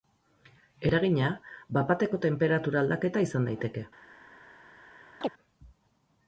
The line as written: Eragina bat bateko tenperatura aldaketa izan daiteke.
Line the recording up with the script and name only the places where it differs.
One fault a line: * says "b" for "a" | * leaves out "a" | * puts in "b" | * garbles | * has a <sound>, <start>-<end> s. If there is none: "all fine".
* has a chirp, 5.2-5.3 s